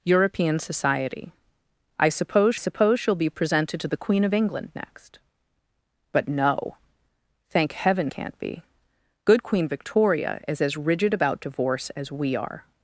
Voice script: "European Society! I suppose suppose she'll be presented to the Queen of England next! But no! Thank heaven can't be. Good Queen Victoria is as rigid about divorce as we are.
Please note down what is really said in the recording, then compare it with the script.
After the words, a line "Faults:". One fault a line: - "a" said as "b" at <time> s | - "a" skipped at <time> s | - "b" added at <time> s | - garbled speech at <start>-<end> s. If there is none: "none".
"European Society! I suppose suppose she'll be presented to the Queen of England next! But no! Thank heaven can't be. Good Queen Victoria is as rigid about divorce as we are.
Faults:
none